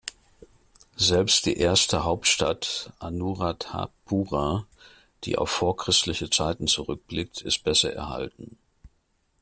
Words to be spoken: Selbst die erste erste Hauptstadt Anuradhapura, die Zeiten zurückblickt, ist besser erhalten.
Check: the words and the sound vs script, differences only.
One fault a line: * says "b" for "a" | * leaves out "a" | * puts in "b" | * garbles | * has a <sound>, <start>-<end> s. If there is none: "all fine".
* leaves out "erste"
* puts in "auf vorchristliche"